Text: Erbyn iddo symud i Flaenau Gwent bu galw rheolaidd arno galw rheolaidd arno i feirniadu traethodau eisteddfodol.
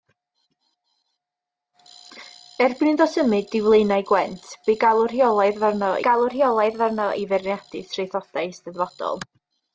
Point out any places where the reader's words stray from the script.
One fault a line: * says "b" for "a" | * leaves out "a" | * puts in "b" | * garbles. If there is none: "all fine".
all fine